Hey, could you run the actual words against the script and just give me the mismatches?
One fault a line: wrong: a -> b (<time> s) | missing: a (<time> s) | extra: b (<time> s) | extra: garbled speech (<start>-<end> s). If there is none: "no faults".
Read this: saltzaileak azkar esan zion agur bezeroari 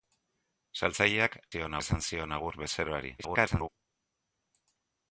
wrong: azkar -> zion (1.5 s)
extra: garbled speech (3.2-3.7 s)